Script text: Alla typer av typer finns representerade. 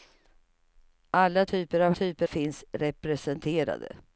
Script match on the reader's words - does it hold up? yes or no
yes